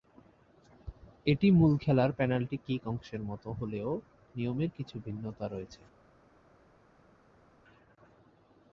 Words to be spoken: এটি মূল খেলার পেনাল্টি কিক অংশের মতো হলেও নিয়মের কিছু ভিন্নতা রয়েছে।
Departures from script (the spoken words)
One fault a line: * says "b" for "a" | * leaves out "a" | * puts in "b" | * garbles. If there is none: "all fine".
all fine